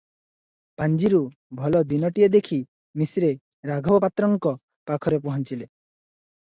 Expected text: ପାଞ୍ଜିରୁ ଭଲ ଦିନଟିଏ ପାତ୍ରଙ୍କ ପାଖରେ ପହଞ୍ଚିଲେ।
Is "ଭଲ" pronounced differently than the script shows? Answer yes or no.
no